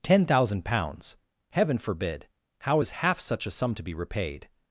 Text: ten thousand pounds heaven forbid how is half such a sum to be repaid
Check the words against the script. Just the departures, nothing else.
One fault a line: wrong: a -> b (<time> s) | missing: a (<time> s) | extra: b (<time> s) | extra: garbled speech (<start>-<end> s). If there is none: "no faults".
no faults